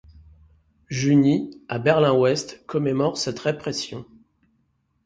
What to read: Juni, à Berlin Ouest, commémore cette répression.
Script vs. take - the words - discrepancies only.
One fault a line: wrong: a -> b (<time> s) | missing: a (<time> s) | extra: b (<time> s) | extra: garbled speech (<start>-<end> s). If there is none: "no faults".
no faults